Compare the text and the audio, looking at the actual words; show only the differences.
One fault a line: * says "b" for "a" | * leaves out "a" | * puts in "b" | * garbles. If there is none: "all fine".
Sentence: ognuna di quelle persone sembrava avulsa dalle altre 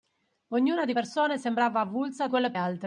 * leaves out "quelle"
* says "quelle" for "dalle"